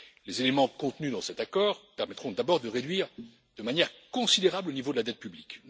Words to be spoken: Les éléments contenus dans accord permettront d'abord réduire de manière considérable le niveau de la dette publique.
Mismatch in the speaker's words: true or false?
true